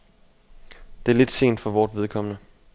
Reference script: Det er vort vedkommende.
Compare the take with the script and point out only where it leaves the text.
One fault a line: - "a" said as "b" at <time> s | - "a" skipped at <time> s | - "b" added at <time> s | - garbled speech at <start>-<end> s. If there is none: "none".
- "lidt sent for" added at 1.2 s